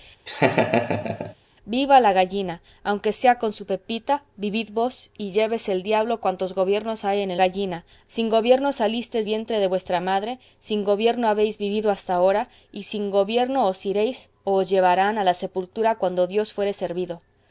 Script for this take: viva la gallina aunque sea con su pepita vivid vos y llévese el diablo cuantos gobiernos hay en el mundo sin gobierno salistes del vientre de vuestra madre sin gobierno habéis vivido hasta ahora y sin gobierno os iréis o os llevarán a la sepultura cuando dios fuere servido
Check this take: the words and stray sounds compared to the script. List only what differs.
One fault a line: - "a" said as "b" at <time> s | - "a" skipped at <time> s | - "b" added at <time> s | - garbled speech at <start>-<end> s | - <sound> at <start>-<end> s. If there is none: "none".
- laugh at 0.3-1.3 s
- "mundo" said as "gallina" at 7.4 s
- "del" skipped at 9.3 s